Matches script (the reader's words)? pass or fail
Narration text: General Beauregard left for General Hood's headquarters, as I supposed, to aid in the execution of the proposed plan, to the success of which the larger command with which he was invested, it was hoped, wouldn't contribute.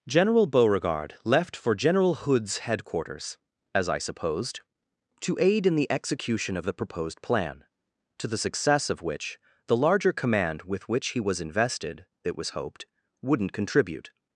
pass